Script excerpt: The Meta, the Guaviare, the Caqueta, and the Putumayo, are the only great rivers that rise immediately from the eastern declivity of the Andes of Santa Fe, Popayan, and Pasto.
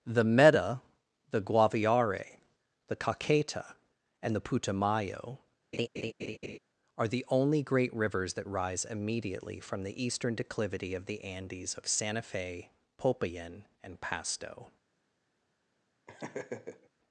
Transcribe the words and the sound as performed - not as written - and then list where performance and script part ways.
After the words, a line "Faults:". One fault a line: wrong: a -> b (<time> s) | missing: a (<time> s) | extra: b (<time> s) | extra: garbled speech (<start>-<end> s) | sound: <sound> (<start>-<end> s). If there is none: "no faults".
The Meta, the Guaviare, the Caqueta, and the Putumayo, are the only great rivers that rise immediately from the eastern declivity of the Andes of Santa Fe, Popayan, and Pasto.
Faults:
sound: laugh (5.7-6.6 s)
sound: laugh (16.1-16.9 s)